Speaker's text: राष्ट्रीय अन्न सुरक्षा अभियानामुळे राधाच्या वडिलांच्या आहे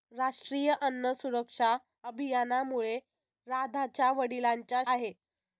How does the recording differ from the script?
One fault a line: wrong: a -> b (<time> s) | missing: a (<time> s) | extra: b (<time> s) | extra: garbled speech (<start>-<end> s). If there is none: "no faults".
no faults